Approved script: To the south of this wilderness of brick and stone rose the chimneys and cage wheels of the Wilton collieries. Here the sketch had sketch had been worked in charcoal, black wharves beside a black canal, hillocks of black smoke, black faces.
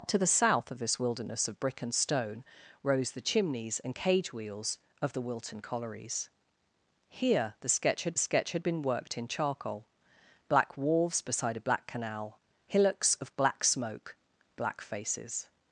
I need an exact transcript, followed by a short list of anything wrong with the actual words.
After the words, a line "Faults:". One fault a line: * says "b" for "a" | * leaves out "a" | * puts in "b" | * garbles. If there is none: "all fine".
To the south of this wilderness of brick and stone rose the chimneys and cage wheels of the Wilton collieries. Here the sketch had sketch had been worked in charcoal, black wharves beside a black canal, hillocks of black smoke, black faces.
Faults:
all fine